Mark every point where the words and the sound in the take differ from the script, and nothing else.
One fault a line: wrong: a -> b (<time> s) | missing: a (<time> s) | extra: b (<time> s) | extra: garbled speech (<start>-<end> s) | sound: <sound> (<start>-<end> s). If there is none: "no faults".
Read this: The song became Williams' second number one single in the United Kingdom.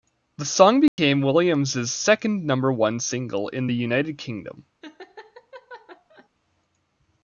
sound: dropout (0.9-1.0 s)
sound: laugh (4.8-6.3 s)